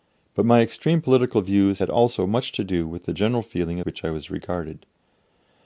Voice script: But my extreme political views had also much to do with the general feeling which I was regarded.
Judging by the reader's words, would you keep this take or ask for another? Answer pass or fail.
pass